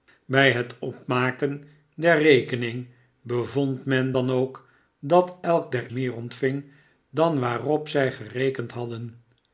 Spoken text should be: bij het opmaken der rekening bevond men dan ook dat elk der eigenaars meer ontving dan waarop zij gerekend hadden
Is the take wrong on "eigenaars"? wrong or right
wrong